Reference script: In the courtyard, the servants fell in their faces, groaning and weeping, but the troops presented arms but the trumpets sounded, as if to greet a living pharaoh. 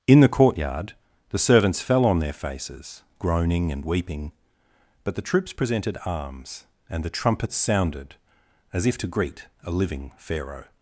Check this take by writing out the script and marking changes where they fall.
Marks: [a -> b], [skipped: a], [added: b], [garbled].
In the courtyard, the servants fell [in -> on] their faces, groaning and weeping, but the troops presented arms [but -> and] the trumpets sounded, as if to greet a living pharaoh.